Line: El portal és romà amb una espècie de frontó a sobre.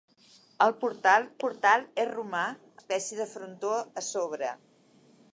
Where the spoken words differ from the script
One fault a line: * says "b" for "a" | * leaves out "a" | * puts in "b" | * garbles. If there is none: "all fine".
* puts in "portal"
* leaves out "amb una"